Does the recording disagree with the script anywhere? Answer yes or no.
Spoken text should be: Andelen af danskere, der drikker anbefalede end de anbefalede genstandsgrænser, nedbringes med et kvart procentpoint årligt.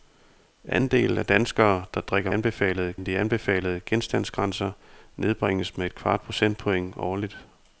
no